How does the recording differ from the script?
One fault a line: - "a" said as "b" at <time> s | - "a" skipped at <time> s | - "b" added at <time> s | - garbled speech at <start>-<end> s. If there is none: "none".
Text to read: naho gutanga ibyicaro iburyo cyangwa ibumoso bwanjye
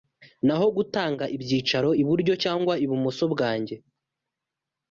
none